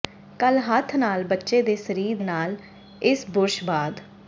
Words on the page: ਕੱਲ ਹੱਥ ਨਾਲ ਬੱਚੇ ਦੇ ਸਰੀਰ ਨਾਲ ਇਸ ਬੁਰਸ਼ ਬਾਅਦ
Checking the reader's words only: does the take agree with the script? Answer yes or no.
yes